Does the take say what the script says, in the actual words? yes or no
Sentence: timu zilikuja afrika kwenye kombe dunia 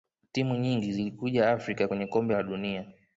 no